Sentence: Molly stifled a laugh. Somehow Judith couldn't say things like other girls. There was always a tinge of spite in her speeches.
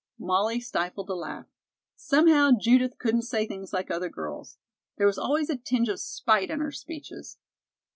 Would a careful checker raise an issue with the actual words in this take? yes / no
no